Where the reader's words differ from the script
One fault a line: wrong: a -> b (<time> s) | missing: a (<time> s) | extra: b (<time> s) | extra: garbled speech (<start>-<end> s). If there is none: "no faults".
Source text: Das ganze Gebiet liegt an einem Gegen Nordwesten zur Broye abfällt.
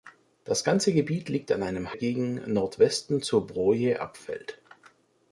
no faults